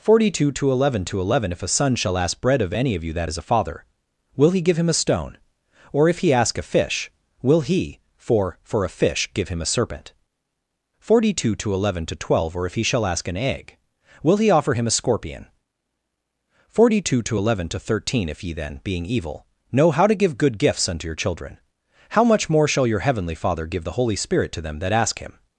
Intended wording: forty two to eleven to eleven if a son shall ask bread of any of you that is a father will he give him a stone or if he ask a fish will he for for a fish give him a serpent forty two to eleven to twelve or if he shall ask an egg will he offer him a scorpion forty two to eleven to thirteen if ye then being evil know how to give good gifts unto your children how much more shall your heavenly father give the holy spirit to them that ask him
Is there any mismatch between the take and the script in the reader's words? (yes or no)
no